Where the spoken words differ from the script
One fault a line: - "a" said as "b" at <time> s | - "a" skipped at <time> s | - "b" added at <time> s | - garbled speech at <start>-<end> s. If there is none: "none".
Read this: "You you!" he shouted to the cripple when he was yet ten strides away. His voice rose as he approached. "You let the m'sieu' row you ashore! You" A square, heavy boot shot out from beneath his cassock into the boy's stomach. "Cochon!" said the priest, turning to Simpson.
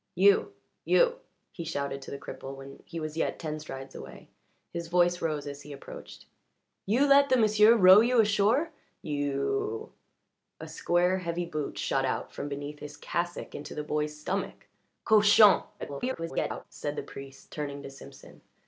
- garbled speech at 15.8-16.6 s